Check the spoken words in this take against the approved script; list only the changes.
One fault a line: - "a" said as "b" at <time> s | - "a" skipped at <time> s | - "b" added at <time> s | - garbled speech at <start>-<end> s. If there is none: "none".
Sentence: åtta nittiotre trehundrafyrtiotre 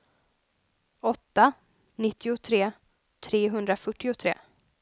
none